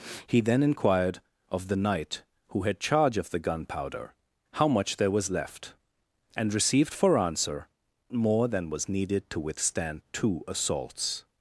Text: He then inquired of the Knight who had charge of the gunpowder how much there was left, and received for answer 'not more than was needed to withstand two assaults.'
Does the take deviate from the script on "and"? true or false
false